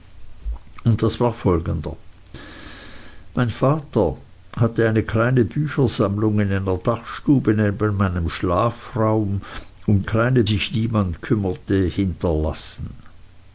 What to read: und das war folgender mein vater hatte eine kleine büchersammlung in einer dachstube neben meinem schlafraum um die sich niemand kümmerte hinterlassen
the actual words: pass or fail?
fail